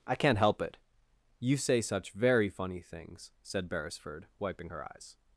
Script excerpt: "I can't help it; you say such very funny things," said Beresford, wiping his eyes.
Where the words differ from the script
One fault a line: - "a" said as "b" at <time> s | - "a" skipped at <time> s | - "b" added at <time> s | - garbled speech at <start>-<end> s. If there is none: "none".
- "his" said as "her" at 4.7 s